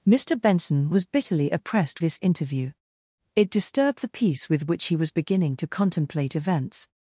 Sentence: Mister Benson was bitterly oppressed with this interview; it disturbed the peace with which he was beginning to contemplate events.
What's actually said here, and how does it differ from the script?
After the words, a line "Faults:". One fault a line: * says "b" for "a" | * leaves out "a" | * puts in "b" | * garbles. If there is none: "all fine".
Mister Benson was bitterly oppressed this interview; it disturbed the peace with which he was beginning to contemplate events.
Faults:
* leaves out "with"